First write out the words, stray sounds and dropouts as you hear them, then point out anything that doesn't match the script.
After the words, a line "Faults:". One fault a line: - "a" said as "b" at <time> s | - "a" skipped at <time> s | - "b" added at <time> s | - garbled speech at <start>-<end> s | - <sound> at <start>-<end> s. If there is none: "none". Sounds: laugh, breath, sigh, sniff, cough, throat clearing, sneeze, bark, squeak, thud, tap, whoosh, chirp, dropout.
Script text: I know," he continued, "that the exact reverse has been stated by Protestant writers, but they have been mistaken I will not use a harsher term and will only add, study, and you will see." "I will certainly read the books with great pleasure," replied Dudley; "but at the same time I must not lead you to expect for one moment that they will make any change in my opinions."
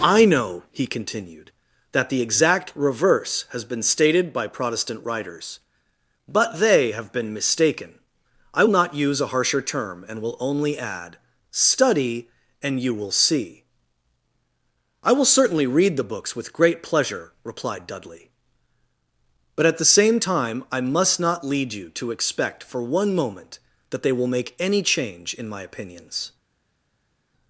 I know," he continued, "that the exact reverse has been stated by Protestant writers, but they have been mistaken I not use a harsher term and will only add, study, and you will see." "I will certainly read the books with great pleasure," replied Dudley; "but at the same time I must not lead you to expect for one moment that they will make any change in my opinions."
Faults:
- "will" skipped at 8.7 s